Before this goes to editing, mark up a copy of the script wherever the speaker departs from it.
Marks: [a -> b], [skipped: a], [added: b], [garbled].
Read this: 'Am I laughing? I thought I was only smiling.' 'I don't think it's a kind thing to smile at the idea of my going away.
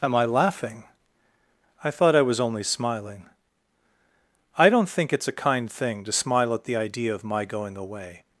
'Am I laughing? I thought I was only smiling.' 'I don't think it's a kind thing to smile at the idea of my going away.